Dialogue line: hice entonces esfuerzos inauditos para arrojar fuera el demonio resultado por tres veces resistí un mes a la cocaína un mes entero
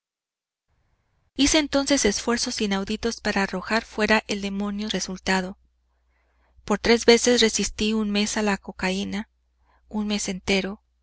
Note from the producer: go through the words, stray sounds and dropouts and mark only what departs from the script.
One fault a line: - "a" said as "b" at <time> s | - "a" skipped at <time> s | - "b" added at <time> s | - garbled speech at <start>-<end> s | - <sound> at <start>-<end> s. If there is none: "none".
none